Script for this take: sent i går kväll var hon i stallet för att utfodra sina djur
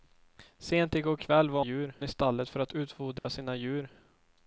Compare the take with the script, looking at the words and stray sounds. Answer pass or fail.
fail